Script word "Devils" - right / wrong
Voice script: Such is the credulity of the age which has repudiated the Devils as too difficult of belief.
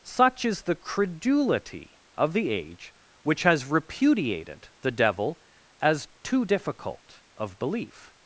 wrong